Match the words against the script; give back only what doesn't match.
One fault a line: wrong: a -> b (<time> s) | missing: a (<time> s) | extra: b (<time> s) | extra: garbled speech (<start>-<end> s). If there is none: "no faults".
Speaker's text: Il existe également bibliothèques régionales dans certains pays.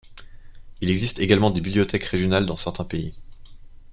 extra: des (1.5 s)